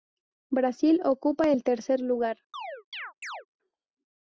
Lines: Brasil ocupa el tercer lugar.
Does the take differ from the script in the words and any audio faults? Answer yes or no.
yes